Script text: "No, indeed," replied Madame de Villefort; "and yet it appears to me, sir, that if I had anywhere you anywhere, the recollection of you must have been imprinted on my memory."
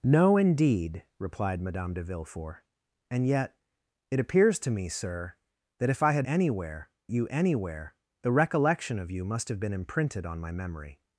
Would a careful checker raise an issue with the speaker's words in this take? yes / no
no